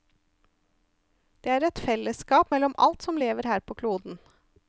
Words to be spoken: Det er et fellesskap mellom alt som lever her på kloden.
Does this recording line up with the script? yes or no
yes